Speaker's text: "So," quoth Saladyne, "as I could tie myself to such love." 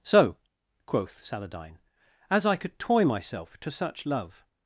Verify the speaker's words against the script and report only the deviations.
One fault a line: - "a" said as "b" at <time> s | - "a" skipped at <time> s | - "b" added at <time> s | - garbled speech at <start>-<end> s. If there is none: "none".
- "tie" said as "toy" at 2.8 s